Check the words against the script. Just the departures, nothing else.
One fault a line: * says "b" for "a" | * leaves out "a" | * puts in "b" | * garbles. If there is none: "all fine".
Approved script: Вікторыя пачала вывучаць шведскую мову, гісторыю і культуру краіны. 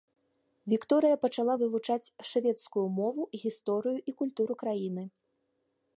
all fine